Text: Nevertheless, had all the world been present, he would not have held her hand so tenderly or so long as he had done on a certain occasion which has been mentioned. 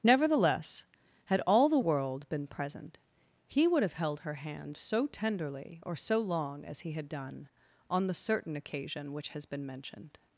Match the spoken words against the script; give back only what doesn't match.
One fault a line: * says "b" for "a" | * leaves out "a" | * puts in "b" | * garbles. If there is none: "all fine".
* leaves out "not"
* says "the" for "a"